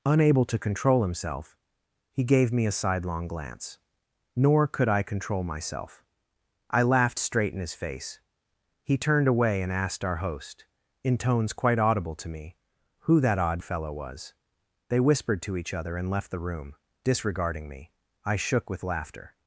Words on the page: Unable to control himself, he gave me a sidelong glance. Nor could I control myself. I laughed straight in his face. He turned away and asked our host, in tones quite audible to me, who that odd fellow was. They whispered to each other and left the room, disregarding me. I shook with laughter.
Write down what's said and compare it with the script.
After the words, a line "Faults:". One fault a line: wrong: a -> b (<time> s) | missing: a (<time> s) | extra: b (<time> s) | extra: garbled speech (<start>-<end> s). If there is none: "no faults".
Unable to control himself, he gave me a sidelong glance. Nor could I control myself. I laughed straight in his face. He turned away and asked our host, in tones quite audible to me, who that odd fellow was. They whispered to each other and left the room, disregarding me. I shook with laughter.
Faults:
no faults